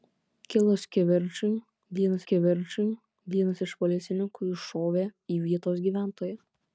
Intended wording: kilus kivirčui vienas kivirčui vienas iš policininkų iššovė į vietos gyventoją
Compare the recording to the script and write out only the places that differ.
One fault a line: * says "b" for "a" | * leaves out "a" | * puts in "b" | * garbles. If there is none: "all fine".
all fine